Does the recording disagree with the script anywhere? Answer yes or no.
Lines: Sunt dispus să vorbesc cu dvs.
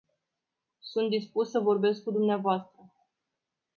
no